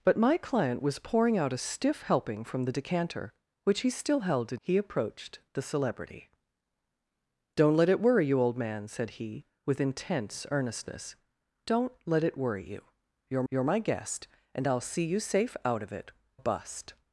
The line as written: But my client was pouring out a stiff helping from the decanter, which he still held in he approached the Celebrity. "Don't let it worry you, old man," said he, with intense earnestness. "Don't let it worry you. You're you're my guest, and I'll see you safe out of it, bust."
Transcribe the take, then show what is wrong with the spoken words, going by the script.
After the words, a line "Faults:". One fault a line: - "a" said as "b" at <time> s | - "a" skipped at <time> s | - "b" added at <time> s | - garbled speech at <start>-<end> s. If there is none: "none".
But my client was pouring out a stiff helping from the decanter, which he still held in he approached the Celebrity. "Don't let it worry you, old man," said he, with intense earnestness. "Don't let it worry you. You're you're my guest, and I'll see you safe out of it, bust."
Faults:
none